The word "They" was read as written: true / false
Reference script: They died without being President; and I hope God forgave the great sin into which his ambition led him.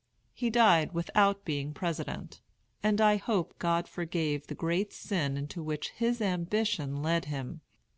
false